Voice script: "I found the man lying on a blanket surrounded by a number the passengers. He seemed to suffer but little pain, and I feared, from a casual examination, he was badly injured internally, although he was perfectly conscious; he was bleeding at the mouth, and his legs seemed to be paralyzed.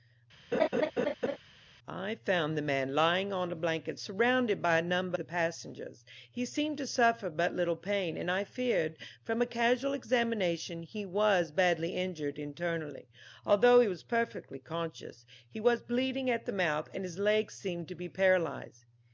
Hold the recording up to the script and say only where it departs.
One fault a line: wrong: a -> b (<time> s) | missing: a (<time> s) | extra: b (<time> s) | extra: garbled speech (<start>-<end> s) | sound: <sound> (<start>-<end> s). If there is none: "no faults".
sound: laugh (0.5-1.4 s)